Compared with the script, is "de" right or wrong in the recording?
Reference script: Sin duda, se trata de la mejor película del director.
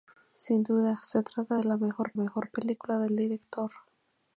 right